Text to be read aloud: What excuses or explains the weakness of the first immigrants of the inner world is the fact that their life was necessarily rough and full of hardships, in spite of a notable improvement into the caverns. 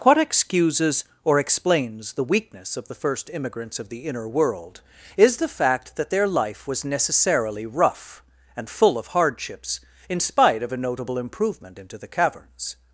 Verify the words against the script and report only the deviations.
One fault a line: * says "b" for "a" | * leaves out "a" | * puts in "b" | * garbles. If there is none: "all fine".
all fine